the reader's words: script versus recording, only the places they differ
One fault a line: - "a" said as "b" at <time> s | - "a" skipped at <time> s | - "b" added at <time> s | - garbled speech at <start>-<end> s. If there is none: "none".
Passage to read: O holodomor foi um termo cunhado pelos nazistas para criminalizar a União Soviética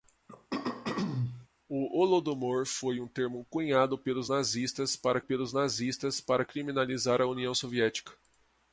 - "pelos nazistas para" added at 5.2 s